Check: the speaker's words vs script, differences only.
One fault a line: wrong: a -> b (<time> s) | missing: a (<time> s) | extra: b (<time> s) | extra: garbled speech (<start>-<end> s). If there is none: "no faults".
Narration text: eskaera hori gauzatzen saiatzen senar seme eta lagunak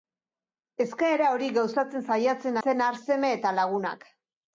no faults